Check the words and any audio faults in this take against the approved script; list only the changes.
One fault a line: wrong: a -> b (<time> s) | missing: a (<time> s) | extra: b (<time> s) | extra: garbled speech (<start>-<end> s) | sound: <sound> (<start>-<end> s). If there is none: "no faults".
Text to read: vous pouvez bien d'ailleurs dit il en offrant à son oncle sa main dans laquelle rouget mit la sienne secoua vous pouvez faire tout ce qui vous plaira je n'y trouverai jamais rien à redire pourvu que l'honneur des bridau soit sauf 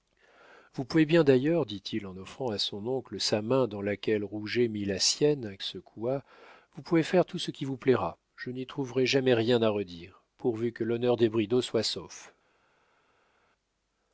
no faults